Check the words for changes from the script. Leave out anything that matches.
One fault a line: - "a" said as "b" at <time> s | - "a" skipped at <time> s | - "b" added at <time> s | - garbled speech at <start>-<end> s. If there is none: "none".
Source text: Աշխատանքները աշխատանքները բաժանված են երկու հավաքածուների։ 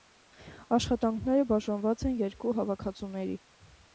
- "աշխատանքները" skipped at 1.4 s